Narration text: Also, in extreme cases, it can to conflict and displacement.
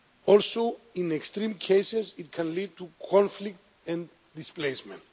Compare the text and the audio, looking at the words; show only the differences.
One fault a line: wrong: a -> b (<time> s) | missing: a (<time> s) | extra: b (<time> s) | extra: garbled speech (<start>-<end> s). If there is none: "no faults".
extra: lead (2.5 s)